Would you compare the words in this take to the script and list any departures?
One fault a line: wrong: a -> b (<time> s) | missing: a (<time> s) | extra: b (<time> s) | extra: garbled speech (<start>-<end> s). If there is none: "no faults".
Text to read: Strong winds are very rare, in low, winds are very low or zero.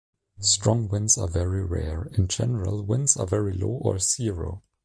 wrong: low -> general (2.3 s)